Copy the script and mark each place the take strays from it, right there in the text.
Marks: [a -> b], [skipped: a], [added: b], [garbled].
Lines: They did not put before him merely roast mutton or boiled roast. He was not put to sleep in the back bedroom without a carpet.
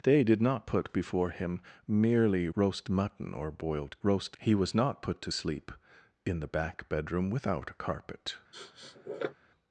They did not put before him merely roast mutton or boiled roast. He was not put to sleep in the back bedroom without a carpet.